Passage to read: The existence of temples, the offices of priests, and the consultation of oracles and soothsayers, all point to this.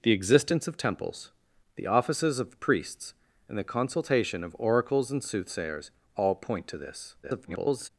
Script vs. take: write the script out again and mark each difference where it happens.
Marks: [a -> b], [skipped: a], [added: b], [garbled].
The existence of temples, the offices of priests, and the consultation of oracles and soothsayers, all point to this. [garbled]